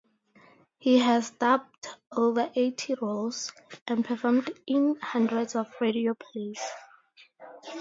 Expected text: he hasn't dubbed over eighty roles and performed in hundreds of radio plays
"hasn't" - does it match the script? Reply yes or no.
no